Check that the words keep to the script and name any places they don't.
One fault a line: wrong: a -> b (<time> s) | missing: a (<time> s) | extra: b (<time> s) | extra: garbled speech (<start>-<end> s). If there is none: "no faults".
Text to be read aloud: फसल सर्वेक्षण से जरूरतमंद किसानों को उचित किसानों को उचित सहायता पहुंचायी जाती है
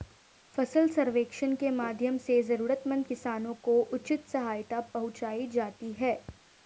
extra: के माध्यम (1.6 s)
missing: किसानों को उचित (4.3 s)